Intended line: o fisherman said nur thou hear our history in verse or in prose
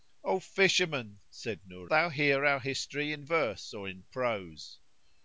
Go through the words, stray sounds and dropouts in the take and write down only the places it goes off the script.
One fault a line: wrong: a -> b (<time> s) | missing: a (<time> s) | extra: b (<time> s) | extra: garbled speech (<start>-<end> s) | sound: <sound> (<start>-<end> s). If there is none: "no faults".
no faults